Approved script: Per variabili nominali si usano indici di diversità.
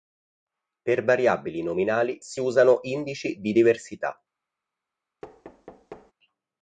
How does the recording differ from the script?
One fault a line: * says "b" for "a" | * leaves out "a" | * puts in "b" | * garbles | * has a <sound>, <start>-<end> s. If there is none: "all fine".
* has a thud, 5.2-6.1 s